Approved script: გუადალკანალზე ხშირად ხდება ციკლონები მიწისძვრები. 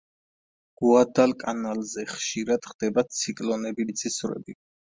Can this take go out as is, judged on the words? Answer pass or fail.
pass